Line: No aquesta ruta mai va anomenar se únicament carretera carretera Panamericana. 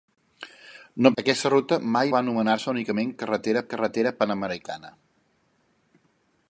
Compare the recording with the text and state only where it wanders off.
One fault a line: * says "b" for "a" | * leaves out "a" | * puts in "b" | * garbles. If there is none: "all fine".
all fine